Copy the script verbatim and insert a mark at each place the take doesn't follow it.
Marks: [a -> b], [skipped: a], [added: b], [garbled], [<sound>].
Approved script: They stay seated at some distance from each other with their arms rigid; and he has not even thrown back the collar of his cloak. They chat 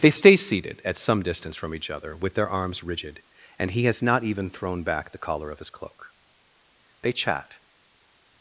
They stay seated at some distance from each other with their arms rigid; and he has not even thrown back the collar of his cloak. They chat